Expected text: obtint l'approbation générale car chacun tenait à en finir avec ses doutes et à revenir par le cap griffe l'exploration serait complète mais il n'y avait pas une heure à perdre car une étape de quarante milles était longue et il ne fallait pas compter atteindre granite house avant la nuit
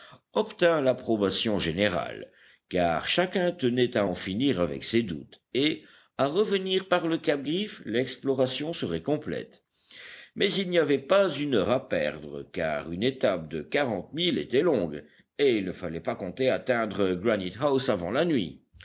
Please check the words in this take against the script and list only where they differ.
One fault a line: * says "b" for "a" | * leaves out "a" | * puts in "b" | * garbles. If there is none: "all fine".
all fine